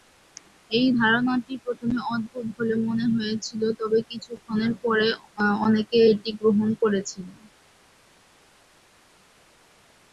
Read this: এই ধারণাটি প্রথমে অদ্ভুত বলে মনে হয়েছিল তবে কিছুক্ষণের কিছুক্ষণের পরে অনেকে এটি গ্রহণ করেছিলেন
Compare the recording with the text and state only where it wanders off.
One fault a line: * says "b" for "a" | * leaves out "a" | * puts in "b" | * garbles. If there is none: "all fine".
* leaves out "কিছুক্ষণের"